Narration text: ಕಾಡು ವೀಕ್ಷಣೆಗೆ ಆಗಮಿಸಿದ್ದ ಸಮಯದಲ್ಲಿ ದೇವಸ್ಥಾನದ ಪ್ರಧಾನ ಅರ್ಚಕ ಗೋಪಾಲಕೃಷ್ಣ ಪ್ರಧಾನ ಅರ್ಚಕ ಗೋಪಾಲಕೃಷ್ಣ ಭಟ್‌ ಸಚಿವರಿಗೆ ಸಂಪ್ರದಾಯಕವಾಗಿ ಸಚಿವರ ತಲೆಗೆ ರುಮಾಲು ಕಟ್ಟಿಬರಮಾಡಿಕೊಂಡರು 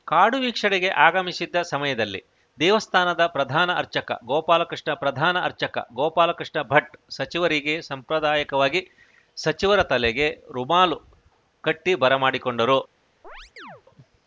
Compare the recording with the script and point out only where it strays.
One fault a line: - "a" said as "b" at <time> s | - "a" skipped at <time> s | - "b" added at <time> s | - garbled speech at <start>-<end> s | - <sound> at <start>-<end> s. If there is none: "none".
- chirp at 13.2-13.8 s